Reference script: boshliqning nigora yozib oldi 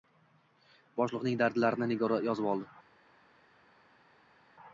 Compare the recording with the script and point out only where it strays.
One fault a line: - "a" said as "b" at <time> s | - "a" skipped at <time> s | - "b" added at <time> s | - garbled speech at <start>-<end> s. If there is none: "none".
- "dardlarini" added at 1.4 s